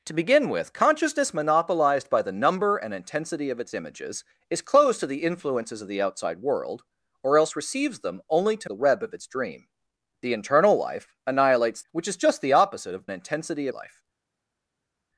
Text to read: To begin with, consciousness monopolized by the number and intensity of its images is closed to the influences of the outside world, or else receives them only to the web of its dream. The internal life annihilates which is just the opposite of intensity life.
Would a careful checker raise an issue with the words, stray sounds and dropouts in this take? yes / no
no